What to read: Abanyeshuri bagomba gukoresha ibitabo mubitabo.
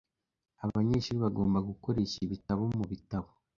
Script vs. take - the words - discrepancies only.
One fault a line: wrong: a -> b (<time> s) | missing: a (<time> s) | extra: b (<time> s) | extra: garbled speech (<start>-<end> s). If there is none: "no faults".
no faults